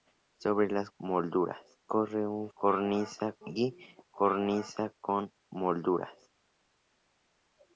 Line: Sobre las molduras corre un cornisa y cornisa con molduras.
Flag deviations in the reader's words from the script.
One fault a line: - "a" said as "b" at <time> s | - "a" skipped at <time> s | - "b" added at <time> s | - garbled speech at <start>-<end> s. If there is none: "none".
none